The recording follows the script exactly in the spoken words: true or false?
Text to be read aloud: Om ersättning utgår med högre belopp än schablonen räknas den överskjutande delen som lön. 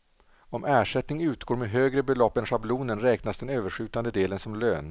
true